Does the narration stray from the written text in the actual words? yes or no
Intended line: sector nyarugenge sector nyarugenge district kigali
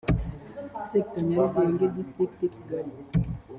yes